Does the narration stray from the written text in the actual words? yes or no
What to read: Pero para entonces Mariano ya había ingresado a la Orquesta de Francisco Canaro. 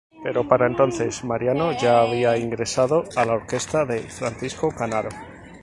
no